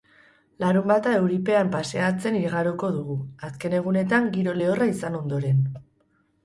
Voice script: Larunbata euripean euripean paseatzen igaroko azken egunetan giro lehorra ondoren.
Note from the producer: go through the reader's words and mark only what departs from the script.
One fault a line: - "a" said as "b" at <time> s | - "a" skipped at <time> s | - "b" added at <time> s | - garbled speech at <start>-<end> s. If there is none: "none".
- "euripean" skipped at 1.7 s
- "dugu" added at 3.0 s
- "izan" added at 5.0 s